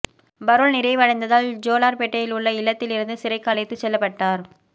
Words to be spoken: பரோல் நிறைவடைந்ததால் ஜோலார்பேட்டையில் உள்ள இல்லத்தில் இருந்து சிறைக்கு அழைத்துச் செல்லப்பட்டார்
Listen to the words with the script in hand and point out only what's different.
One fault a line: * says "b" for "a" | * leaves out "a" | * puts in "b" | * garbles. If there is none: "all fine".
all fine